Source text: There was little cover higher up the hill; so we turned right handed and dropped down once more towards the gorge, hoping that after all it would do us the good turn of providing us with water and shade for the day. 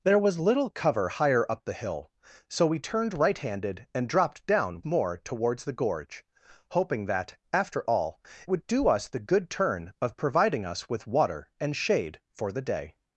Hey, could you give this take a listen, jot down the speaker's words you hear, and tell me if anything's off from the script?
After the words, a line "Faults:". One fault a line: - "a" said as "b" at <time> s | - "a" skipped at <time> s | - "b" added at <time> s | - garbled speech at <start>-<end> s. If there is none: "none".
There was little cover higher up the hill; so we turned right handed and dropped down more towards the gorge, hoping that after all would do us the good turn of providing us with water and shade for the day.
Faults:
- "once" skipped at 4.8 s
- "it" skipped at 8.2 s